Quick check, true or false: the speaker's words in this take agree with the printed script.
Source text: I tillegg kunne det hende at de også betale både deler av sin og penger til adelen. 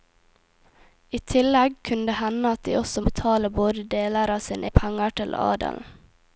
true